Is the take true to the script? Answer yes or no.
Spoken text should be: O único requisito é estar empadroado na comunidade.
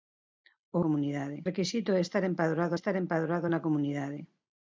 no